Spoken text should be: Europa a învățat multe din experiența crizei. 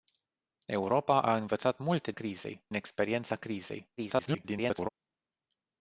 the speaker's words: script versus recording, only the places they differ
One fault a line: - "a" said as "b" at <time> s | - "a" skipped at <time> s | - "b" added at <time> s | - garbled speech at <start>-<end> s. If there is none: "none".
- "din" said as "crizei" at 2.1 s
- garbled speech at 4.0-4.9 s